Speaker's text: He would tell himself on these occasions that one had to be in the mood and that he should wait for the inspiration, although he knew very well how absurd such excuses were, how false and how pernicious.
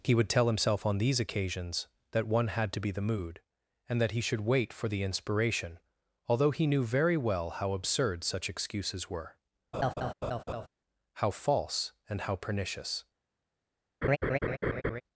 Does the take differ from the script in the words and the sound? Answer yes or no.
yes